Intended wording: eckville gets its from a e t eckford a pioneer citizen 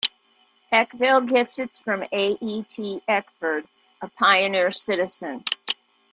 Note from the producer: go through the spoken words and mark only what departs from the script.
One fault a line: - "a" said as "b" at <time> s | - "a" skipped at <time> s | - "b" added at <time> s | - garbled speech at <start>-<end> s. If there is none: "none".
none